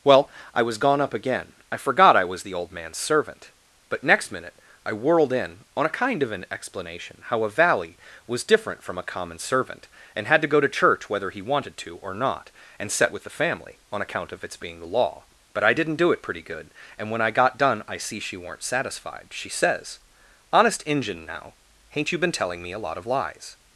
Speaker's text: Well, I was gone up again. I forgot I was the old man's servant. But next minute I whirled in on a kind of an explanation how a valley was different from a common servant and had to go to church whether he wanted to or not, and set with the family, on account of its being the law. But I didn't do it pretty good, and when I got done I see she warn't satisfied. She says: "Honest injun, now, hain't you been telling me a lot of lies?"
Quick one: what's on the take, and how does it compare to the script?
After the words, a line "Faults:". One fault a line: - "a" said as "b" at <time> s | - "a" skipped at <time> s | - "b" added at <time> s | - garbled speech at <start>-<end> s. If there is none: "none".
Well, I was gone up again. I forgot I was the old man's servant. But next minute I whirled in on a kind of an explanation how a valley was different from a common servant and had to go to church whether he wanted to or not, and set with the family, on account of its being the law. But I didn't do it pretty good, and when I got done I see she weren't satisfied. She says: "Honest injun, now, hain't you been telling me a lot of lies?"
Faults:
- "warn't" said as "weren't" at 18.4 s